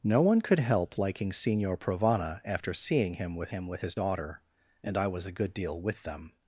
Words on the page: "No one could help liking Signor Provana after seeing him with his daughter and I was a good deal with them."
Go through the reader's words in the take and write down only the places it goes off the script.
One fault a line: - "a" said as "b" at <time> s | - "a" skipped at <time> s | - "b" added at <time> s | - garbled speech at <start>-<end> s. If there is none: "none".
- "him with" added at 3.5 s